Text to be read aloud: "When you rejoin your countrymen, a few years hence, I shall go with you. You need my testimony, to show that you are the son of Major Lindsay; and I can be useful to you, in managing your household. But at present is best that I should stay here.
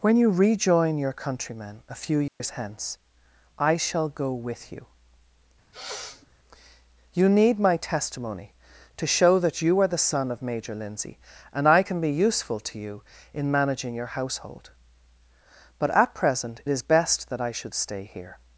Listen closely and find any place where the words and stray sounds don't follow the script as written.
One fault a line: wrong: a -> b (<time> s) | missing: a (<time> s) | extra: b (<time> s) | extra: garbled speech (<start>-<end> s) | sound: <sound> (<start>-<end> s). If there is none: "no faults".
sound: dropout (2.3-2.4 s)
sound: sniff (5.7-6.3 s)